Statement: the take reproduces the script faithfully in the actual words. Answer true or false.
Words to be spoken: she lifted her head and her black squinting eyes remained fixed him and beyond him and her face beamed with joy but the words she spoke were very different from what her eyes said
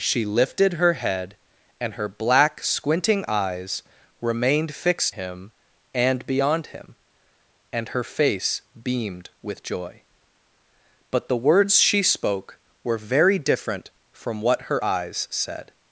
true